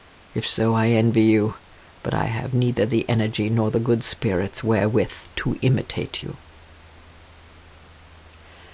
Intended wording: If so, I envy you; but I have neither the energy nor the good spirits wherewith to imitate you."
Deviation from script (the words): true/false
false